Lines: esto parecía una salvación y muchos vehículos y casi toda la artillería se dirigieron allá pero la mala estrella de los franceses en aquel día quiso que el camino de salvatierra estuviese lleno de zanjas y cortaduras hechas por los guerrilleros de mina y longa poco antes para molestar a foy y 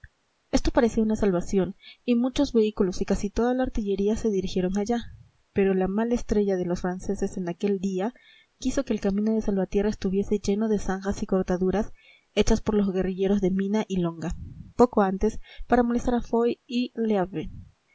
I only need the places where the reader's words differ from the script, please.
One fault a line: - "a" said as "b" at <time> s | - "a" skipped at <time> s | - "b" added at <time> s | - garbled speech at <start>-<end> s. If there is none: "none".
none